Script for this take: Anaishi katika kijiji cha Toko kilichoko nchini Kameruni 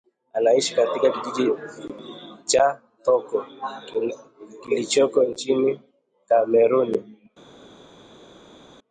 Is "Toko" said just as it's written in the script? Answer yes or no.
yes